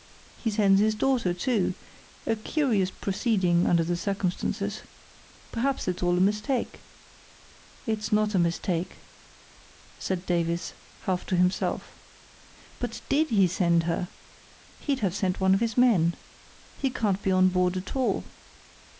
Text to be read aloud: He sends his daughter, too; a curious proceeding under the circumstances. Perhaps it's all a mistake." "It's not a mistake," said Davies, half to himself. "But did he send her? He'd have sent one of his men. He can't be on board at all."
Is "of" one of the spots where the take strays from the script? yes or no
no